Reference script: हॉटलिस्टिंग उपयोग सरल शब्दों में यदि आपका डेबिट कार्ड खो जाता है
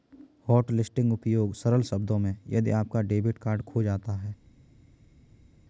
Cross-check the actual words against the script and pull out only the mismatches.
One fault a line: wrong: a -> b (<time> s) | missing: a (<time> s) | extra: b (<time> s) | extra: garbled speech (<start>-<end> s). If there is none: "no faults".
no faults